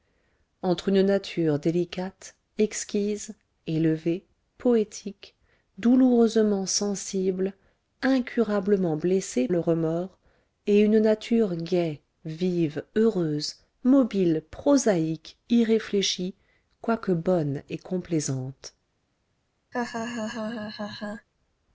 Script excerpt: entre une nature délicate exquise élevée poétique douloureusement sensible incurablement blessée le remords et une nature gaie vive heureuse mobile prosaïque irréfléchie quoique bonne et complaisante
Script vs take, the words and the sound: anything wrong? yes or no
yes